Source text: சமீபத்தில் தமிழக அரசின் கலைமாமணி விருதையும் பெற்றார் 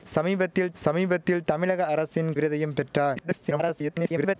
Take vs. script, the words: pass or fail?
fail